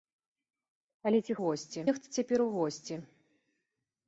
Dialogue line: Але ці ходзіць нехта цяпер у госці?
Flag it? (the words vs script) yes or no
yes